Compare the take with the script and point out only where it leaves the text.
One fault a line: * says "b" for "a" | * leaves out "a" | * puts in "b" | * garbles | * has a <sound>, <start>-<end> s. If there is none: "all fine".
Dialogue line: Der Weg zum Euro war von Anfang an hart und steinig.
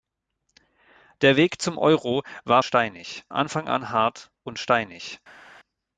* says "steinig" for "von"